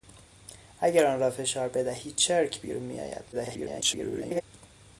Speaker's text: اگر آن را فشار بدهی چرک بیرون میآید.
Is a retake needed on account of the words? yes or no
yes